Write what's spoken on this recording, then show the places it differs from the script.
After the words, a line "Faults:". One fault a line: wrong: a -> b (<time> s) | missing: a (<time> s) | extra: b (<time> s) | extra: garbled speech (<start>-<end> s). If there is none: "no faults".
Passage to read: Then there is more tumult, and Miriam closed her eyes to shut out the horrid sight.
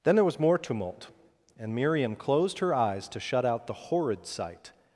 Then there was more tumult, and Miriam closed her eyes to shut out the horrid sight.
Faults:
wrong: is -> was (0.2 s)